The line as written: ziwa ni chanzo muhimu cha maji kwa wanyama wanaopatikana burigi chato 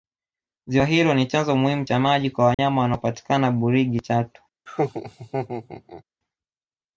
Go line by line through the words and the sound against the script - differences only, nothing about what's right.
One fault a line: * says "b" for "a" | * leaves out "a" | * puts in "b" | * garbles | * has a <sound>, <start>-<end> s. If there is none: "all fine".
* puts in "hilo"
* has a dropout, 2.5-2.6 s
* has a laugh, 4.7-6.0 s